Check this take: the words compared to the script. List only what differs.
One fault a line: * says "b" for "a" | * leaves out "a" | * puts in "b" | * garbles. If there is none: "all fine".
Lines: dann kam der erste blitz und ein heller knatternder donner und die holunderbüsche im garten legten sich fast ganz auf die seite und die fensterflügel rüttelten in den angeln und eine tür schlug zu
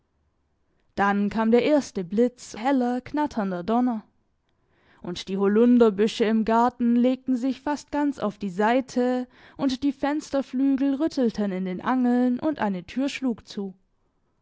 * leaves out "und ein"